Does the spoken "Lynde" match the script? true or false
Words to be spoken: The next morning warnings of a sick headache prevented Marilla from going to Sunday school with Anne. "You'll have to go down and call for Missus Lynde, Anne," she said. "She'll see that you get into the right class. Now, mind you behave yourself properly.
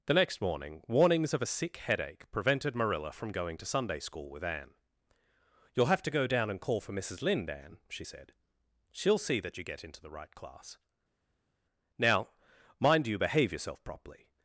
true